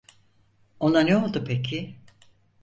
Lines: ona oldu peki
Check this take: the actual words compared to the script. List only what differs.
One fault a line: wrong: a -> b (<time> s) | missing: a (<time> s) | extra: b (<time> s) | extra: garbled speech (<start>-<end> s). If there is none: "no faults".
extra: ne (1.0 s)